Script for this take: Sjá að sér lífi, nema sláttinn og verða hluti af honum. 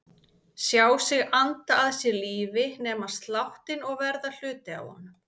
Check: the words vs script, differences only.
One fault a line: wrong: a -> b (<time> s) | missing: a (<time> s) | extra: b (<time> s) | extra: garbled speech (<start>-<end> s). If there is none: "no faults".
extra: sig anda (1.1 s)